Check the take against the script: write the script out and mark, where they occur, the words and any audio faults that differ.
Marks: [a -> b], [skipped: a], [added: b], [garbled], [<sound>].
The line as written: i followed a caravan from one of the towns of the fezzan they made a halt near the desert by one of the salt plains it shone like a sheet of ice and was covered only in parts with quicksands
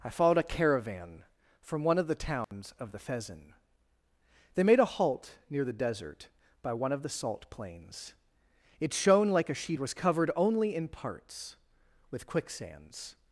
i followed a caravan from one of the towns [dropout] of the fezzan they made a halt near the desert by one of the salt plains it shone like a sheet [skipped: of ice and] was covered only in parts with quicksands